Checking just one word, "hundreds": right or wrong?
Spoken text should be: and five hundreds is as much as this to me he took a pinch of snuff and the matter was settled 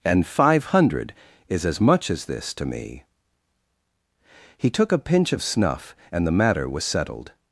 wrong